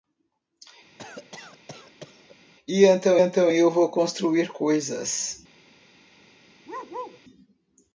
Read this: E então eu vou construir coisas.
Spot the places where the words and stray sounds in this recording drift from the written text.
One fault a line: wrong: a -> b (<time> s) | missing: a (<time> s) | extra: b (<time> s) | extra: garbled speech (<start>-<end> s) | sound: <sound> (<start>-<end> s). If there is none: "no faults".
sound: cough (1.0-2.4 s)
extra: então (3.2 s)
sound: bark (6.7-7.2 s)